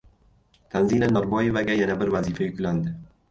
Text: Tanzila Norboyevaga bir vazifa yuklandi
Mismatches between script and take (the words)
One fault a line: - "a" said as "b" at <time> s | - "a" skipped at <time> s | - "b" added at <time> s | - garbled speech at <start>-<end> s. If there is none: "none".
- "yana" added at 1.8 s